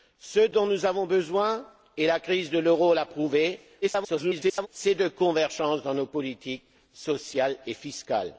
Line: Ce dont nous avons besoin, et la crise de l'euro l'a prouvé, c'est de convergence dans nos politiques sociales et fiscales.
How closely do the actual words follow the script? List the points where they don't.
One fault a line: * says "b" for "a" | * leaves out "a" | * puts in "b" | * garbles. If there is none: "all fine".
* garbles